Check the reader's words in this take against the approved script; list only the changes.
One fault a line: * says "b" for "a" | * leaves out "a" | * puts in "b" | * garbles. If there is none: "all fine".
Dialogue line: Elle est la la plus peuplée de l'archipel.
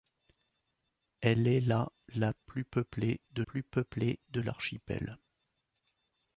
* puts in "plus peuplée de"